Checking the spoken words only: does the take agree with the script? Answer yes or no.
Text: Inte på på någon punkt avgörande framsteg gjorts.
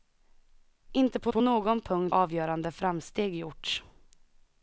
yes